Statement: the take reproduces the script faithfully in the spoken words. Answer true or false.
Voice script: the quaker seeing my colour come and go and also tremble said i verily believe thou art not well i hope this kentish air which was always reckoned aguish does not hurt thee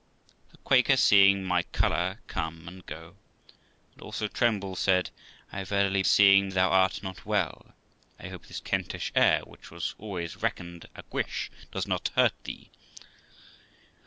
false